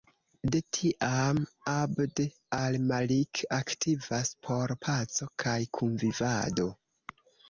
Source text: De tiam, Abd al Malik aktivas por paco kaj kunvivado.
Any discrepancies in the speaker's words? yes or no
no